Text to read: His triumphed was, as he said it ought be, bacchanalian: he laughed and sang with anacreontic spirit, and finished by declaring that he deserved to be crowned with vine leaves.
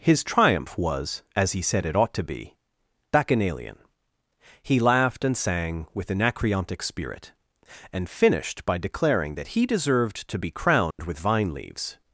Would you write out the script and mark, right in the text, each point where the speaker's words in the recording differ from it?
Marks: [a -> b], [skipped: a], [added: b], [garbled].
His [triumphed -> triumph] was, as he said it ought [added: to] be, bacchanalian: he laughed and sang with anacreontic spirit, and finished by declaring that he deserved to be crowned with vine leaves.